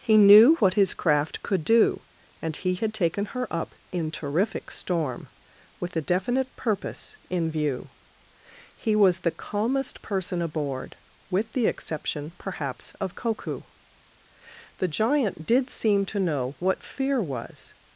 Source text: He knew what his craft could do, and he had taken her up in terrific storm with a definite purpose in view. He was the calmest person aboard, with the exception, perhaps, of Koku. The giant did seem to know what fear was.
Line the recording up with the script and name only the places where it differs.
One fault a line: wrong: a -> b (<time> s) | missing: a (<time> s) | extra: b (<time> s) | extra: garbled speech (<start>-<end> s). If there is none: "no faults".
no faults